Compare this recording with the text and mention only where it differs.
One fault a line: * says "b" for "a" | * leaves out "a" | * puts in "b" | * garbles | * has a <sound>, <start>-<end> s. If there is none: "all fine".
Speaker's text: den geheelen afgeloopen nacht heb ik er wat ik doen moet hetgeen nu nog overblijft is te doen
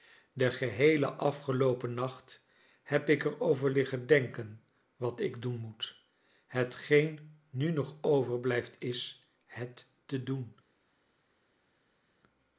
* puts in "over liggen denken"
* puts in "het"